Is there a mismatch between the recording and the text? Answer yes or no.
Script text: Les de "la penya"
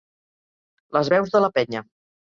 yes